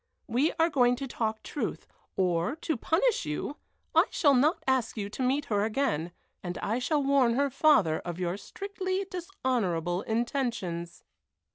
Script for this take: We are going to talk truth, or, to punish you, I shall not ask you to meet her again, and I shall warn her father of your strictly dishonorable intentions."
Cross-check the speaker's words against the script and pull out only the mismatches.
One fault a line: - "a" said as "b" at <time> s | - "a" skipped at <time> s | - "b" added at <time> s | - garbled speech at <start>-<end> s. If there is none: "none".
none